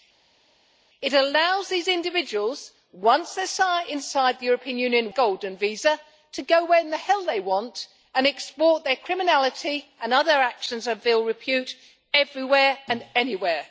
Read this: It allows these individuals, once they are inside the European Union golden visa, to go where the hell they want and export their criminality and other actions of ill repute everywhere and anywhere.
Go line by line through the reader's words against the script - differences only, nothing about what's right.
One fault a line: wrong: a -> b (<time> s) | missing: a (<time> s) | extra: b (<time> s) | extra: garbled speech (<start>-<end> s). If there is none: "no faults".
no faults